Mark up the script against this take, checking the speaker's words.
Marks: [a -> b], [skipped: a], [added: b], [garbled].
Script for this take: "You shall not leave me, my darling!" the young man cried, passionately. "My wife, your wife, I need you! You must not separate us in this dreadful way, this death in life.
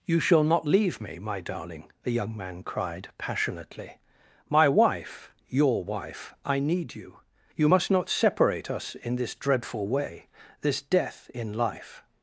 "You shall not leave me, my darling!" the young man cried, passionately. "My wife, your wife, I need you! You must not separate us in this dreadful way, this death in life.